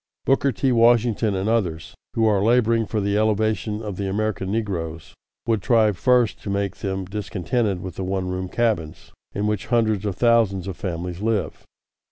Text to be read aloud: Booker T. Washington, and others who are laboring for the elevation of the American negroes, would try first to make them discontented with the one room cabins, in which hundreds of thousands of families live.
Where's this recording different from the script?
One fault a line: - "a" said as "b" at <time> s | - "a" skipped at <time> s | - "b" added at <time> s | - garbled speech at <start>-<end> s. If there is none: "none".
none